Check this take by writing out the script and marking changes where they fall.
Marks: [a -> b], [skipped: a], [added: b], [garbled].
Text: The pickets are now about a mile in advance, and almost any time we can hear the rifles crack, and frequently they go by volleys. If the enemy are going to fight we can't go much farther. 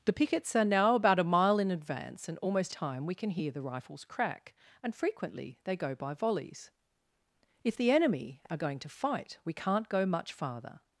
The pickets are now about a mile in advance, and almost [skipped: any] time we can hear the rifles crack, and frequently they go by volleys. If the enemy are going to fight we can't go much farther.